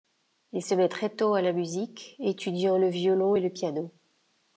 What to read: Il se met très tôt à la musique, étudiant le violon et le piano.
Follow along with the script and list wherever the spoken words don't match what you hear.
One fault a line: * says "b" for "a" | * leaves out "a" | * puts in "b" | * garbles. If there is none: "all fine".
all fine